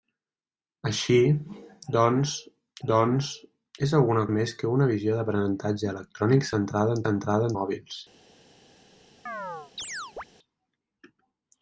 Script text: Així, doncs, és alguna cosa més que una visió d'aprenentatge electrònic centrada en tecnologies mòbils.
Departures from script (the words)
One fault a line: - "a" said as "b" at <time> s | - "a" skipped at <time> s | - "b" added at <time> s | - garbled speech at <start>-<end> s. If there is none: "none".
- "doncs" added at 2.9 s
- "cosa" skipped at 4.2 s
- "tecnologies" said as "centrada" at 7.0 s